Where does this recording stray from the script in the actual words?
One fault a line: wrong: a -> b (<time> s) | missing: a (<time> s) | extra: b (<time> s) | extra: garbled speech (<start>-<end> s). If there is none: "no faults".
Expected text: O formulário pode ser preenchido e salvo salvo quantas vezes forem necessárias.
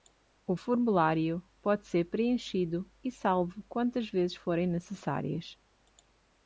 missing: salvo (3.6 s)